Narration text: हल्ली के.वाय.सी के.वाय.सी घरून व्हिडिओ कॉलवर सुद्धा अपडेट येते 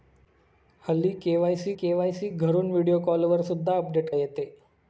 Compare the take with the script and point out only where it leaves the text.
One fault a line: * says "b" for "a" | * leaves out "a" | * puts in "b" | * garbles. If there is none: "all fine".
all fine